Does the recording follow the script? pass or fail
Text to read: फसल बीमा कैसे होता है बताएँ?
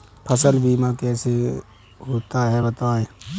pass